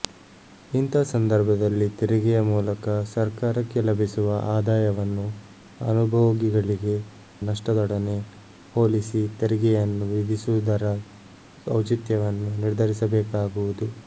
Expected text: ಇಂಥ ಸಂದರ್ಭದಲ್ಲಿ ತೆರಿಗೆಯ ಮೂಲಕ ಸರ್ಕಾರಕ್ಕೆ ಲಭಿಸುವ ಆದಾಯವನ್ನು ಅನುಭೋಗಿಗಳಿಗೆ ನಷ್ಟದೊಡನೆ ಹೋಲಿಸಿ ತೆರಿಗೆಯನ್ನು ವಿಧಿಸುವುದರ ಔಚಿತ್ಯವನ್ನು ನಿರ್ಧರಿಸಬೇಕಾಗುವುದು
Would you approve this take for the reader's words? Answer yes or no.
yes